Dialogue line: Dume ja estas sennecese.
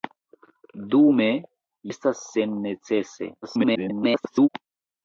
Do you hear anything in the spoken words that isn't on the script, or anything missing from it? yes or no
yes